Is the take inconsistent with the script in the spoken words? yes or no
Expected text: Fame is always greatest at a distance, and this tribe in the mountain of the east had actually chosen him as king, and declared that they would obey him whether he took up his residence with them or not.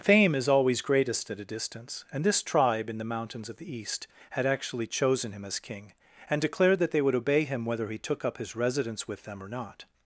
yes